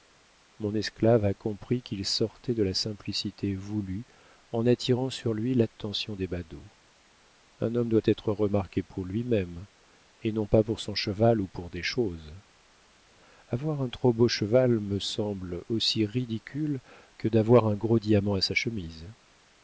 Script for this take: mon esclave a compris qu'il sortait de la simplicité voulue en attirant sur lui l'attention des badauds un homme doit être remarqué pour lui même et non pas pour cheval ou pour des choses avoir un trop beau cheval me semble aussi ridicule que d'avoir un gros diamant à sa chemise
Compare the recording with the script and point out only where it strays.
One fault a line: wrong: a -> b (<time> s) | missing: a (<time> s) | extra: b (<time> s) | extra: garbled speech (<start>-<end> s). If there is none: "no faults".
extra: son (10.8 s)